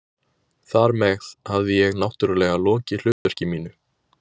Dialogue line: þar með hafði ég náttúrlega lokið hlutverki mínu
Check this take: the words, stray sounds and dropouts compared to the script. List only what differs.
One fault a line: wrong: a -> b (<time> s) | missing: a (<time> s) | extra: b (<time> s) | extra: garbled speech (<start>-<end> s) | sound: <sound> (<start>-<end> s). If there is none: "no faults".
sound: dropout (3.1-3.3 s)